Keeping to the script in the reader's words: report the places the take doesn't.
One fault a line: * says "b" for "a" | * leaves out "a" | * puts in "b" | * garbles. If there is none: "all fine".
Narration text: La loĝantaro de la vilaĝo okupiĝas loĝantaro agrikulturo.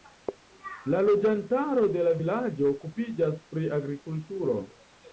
* says "pri" for "loĝantaro"